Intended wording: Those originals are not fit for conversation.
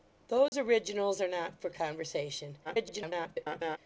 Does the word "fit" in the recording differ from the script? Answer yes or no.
yes